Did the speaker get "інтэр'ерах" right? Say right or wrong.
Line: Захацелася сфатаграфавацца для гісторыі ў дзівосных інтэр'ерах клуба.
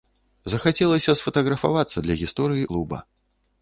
wrong